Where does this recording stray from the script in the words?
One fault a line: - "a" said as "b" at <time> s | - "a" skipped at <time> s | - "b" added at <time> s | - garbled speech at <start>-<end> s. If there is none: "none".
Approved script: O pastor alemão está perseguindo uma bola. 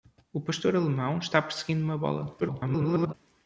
- garbled speech at 2.4-3.1 s